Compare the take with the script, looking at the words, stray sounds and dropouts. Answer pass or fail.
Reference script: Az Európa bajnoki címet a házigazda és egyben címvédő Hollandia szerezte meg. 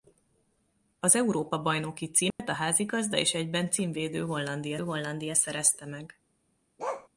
fail